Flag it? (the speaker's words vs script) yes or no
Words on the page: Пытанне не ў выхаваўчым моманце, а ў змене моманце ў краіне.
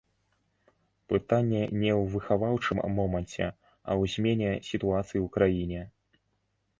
yes